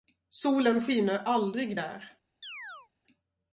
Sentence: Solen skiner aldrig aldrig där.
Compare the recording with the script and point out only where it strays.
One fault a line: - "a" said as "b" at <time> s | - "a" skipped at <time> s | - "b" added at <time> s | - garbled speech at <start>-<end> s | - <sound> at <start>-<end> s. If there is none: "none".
- "aldrig" skipped at 1.8 s
- chirp at 2.4-2.9 s